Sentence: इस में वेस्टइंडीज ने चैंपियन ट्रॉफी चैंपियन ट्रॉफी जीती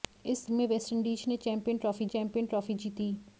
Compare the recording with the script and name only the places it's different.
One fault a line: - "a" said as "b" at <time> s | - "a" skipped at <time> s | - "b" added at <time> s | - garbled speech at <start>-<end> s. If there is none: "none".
none